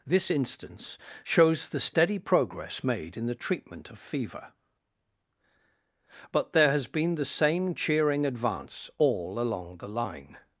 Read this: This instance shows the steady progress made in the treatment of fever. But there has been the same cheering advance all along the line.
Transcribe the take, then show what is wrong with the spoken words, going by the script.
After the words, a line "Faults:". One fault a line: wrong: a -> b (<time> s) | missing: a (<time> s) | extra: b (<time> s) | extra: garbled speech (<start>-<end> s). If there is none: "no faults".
This instance shows the steady progress made in the treatment of fever. But there has been the same cheering advance all along the line.
Faults:
no faults